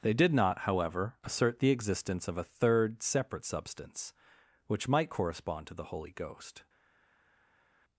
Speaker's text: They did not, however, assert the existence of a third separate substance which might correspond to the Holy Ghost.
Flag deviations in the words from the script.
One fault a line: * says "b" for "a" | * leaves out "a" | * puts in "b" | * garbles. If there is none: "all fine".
all fine